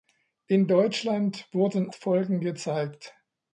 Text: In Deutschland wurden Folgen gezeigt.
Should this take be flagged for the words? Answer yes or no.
no